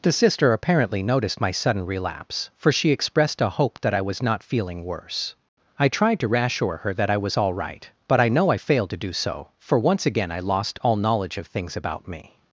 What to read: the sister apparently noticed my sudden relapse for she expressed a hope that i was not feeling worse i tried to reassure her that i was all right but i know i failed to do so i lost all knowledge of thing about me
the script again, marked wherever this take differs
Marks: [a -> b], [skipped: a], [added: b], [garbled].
the sister apparently noticed my sudden relapse for she expressed a hope that i was not feeling worse i tried to reassure her that i was all right but i know i failed to do so [added: for once again] i lost all knowledge of [thing -> things] about me